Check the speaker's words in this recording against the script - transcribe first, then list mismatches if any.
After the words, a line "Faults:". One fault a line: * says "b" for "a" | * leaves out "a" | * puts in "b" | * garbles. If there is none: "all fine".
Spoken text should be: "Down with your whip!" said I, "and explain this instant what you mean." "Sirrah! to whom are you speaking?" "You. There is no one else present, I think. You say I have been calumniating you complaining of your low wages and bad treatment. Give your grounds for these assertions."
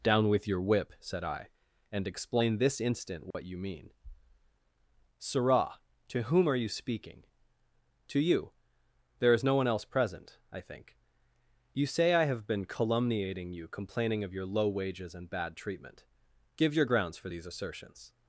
"Down with your whip!" said I, "and explain this instant what you mean." "Sirrah! to whom are you speaking?" "To you. There is no one else present, I think. You say I have been calumniating you complaining of your low wages and bad treatment. Give your grounds for these assertions."
Faults:
* puts in "To"